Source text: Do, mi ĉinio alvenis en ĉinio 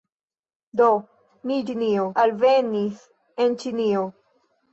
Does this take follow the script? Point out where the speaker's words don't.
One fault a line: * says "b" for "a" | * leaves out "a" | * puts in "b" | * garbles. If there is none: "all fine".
all fine